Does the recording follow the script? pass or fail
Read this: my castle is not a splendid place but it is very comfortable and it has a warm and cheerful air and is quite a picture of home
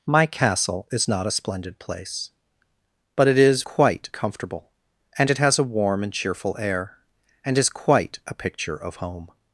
fail